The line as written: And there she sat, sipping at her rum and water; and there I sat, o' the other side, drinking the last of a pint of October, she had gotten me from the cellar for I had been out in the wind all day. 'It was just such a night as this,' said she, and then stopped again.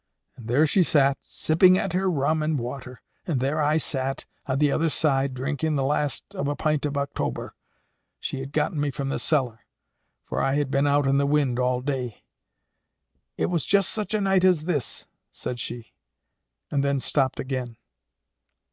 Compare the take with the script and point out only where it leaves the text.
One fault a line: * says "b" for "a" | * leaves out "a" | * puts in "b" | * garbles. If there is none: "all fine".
all fine